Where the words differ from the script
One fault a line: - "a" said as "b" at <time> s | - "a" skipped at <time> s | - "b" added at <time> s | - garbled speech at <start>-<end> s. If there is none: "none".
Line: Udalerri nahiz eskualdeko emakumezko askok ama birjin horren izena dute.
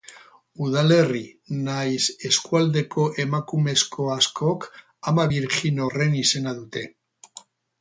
none